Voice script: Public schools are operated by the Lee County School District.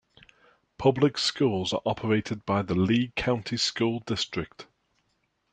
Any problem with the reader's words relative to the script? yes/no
no